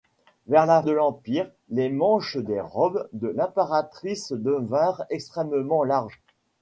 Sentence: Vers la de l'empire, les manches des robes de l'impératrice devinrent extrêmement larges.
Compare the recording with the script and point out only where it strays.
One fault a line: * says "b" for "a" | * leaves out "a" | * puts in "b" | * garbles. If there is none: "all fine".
all fine